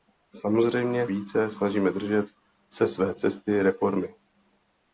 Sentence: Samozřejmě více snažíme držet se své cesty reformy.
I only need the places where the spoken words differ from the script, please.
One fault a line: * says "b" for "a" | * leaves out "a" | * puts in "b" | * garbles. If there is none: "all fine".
all fine